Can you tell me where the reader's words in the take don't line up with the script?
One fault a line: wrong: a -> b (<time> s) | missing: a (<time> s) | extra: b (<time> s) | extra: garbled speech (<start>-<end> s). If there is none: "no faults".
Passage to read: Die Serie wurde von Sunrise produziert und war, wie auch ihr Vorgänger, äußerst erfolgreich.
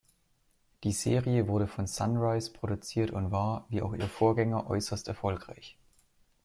no faults